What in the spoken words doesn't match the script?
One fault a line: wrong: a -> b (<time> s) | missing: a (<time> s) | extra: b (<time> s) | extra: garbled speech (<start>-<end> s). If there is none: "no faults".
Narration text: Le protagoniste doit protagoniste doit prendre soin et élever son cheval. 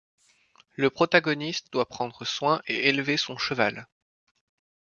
missing: protagoniste doit (1.9 s)